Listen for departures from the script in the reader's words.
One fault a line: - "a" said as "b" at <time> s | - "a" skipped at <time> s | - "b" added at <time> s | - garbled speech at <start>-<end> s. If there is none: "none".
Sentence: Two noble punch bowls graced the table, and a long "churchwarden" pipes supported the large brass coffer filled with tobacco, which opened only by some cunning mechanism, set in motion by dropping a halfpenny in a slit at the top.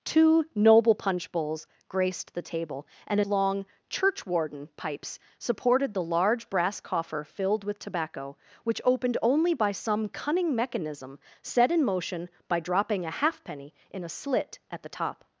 none